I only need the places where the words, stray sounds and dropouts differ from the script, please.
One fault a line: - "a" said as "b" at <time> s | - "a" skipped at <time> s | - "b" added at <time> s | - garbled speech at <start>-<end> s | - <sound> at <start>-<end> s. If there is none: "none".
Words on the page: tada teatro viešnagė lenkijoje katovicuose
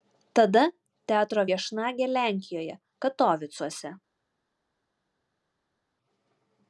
none